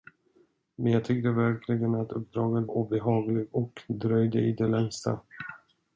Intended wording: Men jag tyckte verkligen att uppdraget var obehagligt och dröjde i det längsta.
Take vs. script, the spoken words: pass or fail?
fail